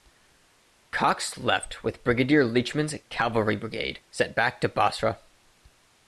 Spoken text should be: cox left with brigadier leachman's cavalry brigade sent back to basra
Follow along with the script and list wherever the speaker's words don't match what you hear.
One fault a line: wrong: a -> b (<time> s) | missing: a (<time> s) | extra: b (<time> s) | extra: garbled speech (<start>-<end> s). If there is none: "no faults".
no faults